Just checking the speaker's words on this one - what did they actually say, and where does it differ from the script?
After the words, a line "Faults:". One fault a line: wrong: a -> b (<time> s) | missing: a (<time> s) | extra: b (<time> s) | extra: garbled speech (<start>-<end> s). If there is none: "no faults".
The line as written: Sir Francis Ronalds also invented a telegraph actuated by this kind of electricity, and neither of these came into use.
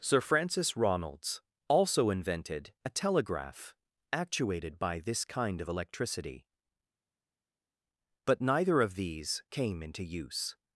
Sir Francis Ronalds also invented a telegraph actuated by this kind of electricity, but neither of these came into use.
Faults:
wrong: and -> but (8.2 s)